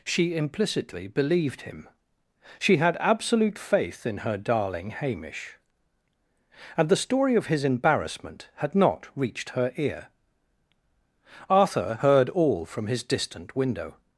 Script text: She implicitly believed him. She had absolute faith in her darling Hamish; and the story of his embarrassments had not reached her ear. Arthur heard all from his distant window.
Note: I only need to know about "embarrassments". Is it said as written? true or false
false